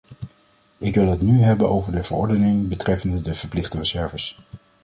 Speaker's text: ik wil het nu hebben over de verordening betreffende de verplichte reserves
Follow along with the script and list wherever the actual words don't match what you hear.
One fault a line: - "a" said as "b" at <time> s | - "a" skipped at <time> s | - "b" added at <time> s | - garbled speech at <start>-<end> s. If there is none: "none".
none